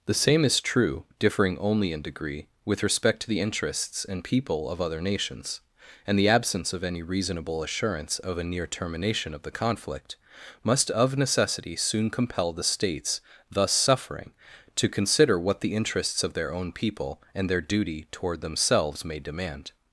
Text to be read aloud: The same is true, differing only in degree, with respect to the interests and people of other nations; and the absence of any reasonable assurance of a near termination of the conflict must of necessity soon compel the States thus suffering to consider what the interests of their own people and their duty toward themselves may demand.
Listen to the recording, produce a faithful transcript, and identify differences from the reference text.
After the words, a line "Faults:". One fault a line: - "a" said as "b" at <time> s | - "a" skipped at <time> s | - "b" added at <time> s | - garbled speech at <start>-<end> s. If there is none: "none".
The same is true, differing only in degree, with respect to the interests and people of other nations; and the absence of any reasonable assurance of a near termination of the conflict must of necessity soon compel the States thus suffering to consider what the interests of their own people and their duty toward themselves may demand.
Faults:
none